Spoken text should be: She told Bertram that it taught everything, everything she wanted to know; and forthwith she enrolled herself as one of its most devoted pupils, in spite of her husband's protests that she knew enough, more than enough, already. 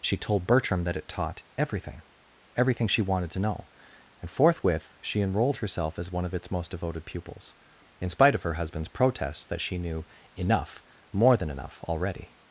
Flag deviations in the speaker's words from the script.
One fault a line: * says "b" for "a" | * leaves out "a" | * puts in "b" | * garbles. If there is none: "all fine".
all fine